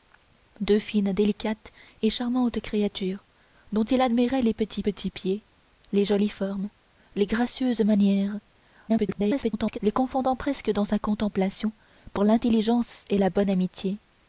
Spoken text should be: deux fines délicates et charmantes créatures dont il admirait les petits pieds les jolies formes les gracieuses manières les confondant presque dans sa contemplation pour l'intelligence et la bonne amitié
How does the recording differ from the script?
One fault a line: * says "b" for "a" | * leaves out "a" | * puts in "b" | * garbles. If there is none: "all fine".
* puts in "petits"
* garbles